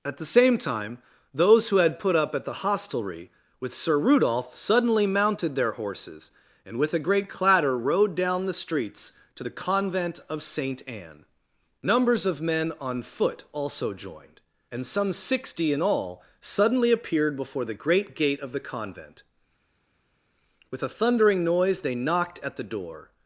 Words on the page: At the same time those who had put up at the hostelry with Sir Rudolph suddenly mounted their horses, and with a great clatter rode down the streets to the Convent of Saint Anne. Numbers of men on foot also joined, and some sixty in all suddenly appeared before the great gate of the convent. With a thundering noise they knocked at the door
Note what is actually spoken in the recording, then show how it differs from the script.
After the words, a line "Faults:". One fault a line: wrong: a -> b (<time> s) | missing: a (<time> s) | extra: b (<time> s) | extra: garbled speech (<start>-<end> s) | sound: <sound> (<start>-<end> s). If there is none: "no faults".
At the same time those who had put up at the hostelry with Sir Rudolph suddenly mounted their horses, and with a great clatter rode down the streets to the Convent of Saint Anne. Numbers of men on foot also joined, and some sixty in all suddenly appeared before the great gate of the convent. With a thundering noise they knocked at the door
Faults:
no faults